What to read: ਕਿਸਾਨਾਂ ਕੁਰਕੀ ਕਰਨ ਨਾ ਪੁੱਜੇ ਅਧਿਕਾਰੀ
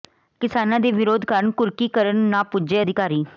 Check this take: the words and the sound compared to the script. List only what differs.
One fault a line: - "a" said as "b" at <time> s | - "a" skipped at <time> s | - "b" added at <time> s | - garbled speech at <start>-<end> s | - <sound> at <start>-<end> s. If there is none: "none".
- "ਦੇ ਵਿਰੋਧ ਕਾਰਨ" added at 0.8 s